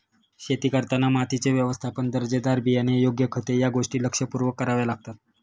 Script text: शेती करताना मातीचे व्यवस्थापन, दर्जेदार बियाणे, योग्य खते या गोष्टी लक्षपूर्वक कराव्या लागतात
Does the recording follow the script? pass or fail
pass